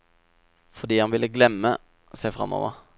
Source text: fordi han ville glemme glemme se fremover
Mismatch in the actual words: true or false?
true